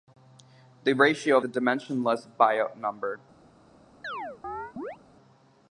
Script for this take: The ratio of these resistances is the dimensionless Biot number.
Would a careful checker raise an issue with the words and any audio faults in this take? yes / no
yes